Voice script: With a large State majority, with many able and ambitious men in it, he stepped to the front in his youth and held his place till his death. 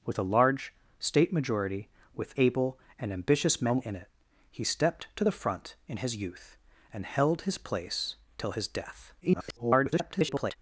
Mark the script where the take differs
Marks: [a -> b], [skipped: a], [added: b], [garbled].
With a large State majority, with [skipped: many] able and ambitious men in it, he stepped to the front in his youth and held his place till his death. [garbled]